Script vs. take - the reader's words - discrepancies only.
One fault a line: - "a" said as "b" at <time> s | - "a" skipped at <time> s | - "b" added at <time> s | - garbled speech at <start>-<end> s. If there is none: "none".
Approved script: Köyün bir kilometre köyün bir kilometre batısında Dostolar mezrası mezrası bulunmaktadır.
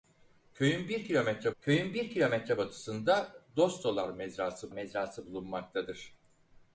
none